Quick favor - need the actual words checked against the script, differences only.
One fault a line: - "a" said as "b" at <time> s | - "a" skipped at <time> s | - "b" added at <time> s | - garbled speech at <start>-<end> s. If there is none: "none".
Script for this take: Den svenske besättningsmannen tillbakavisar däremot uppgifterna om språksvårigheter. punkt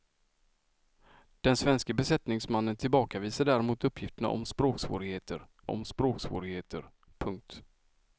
- "om språksvårigheter" added at 5.7 s